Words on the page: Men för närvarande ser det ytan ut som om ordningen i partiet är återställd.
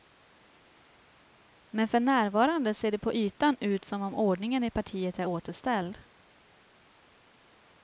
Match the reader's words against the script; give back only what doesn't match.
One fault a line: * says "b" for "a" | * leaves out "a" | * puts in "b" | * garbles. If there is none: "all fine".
* puts in "på"